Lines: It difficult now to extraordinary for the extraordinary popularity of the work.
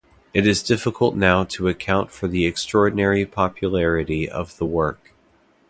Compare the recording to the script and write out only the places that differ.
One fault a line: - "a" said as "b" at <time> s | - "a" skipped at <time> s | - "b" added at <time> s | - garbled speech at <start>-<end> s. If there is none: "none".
- "is" added at 0.5 s
- "extraordinary" said as "account" at 1.7 s